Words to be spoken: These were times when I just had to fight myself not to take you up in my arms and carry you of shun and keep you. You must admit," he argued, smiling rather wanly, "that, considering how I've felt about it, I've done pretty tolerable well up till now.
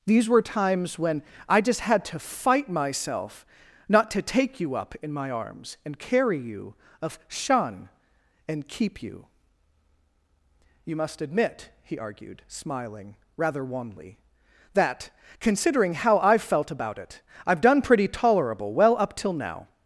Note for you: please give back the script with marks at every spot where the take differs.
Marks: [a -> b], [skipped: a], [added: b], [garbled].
These were times when I just had to fight myself not to take you up in my arms and carry you of shun and keep you. You must admit," he argued, smiling rather wanly, "that, considering how I've felt about it, I've done pretty tolerable well up till now.